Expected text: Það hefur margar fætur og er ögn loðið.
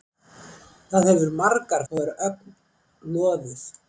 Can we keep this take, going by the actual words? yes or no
no